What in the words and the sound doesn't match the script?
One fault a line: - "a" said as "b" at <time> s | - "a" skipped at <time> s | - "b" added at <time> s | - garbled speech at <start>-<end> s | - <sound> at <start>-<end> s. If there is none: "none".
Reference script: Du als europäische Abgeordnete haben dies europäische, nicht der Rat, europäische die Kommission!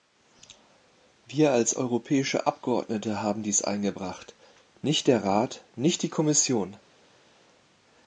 - "Du" said as "Wir" at 1.3 s
- "europäische" said as "eingebracht" at 3.6 s
- "europäische" said as "nicht" at 5.8 s